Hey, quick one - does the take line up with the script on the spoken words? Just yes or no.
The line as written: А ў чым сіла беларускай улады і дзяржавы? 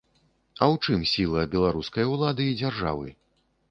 yes